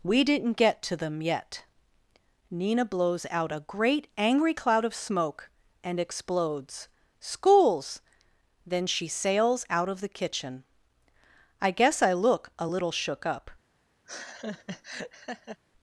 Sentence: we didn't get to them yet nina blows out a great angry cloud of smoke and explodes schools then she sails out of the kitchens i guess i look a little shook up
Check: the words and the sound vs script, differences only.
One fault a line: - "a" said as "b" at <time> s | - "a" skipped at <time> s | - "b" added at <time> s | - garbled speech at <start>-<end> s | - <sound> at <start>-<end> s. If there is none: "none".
- "kitchens" said as "kitchen" at 10.1 s
- laugh at 14.1-15.6 s